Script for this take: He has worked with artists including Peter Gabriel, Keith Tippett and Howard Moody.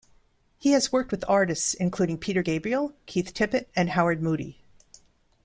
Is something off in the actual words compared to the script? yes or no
no